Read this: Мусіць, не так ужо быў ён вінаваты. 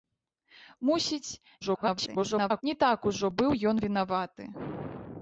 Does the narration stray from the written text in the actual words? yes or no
yes